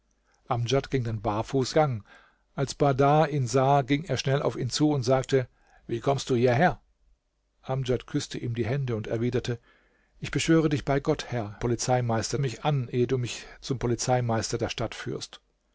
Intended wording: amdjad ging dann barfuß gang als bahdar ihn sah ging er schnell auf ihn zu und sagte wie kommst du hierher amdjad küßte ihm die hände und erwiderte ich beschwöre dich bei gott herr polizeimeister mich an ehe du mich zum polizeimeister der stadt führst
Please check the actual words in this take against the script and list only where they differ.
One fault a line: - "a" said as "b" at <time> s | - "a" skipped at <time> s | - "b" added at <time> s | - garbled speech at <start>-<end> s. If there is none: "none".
none